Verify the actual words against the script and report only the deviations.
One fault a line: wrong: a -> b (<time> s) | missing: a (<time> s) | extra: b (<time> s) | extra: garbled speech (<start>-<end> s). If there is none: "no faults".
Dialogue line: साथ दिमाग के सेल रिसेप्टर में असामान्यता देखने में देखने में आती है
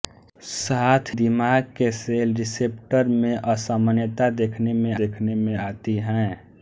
no faults